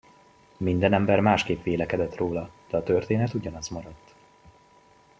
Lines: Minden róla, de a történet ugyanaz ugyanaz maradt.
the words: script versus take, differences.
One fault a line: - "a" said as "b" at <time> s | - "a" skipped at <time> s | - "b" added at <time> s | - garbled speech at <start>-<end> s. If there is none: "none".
- "ember másképp vélekedett" added at 0.9 s
- "ugyanaz" skipped at 3.7 s